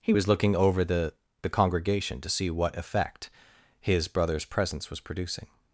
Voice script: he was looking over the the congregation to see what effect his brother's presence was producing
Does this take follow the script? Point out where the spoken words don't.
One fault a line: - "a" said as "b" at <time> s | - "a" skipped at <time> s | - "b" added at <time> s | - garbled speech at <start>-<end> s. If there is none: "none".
none